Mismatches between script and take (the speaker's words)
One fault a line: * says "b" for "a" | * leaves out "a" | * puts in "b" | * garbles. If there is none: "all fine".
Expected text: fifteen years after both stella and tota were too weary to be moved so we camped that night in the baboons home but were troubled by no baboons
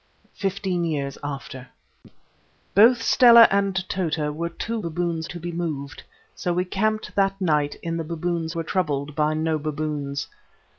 * says "baboons" for "weary"
* leaves out "home but"